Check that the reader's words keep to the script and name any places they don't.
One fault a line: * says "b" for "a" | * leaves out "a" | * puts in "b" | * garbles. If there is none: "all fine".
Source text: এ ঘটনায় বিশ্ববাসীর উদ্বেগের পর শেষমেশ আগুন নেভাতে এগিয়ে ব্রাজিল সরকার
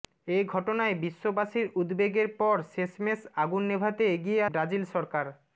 all fine